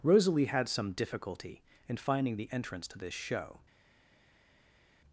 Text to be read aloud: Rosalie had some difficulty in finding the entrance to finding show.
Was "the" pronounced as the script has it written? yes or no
yes